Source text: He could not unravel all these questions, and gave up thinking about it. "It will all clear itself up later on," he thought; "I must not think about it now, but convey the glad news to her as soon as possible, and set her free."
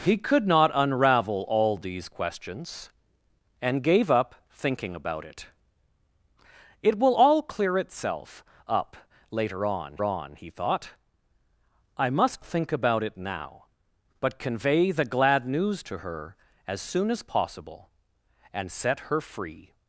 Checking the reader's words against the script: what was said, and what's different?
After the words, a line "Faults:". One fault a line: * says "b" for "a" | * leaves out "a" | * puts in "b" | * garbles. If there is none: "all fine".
He could not unravel all these questions, and gave up thinking about it. "It will all clear itself up later on on," he thought; "I must think about it now, but convey the glad news to her as soon as possible, and set her free."
Faults:
* puts in "on"
* leaves out "not"